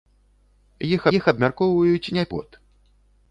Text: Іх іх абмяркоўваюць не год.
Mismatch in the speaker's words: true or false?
false